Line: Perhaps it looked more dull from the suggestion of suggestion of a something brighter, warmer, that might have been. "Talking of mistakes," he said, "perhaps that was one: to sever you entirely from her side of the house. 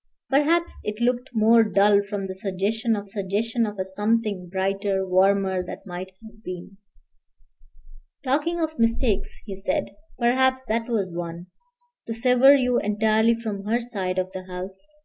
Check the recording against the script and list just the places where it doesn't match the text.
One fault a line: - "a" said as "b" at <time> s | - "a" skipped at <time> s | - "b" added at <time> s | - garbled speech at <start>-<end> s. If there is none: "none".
none